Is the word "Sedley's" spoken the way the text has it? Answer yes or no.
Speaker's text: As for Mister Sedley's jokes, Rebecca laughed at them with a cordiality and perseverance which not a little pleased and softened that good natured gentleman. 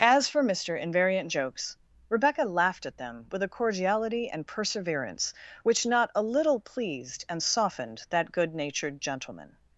no